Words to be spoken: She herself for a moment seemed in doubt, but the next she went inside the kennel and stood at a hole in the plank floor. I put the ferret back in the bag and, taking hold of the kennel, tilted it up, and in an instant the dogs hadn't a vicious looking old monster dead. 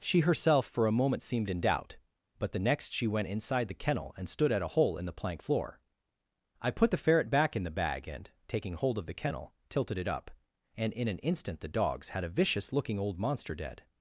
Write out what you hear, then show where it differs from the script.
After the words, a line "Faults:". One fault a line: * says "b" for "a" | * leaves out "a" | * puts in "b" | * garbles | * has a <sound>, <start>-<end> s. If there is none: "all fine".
She herself for a moment seemed in doubt, but the next she went inside the kennel and stood at a hole in the plank floor. I put the ferret back in the bag and, taking hold of the kennel, tilted it up, and in an instant the dogs had a vicious looking old monster dead.
Faults:
* says "had" for "hadn't"